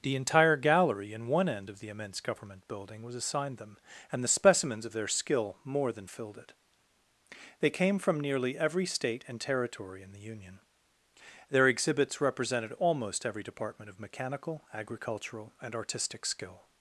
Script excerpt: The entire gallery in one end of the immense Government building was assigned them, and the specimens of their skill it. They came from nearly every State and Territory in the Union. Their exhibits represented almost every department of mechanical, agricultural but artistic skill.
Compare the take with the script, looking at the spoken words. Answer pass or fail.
fail